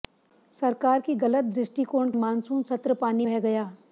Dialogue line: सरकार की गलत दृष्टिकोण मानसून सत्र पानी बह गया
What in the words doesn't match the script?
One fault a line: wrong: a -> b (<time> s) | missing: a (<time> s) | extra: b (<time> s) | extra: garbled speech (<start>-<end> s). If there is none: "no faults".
no faults